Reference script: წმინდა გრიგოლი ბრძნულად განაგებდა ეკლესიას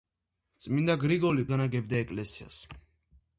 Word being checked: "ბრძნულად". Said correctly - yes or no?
no